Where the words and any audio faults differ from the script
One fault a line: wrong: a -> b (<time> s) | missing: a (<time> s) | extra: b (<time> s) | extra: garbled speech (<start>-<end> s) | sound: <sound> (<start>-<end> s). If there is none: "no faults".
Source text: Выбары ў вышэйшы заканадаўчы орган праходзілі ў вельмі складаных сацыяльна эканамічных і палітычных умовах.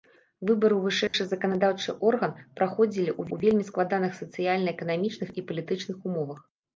sound: dropout (1.1-1.1 s)
extra: ў (3.3 s)